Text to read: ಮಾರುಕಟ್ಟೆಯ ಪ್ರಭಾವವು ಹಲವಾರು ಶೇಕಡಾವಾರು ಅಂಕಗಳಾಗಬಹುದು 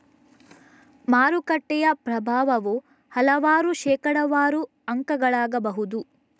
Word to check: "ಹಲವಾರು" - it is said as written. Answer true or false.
true